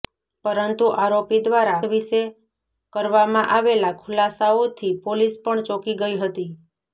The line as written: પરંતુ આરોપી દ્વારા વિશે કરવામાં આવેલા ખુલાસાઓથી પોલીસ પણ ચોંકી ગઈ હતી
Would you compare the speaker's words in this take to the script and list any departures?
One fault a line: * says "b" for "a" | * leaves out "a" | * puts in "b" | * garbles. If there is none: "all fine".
all fine